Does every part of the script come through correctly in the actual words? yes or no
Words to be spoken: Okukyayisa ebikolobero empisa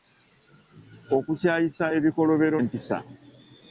yes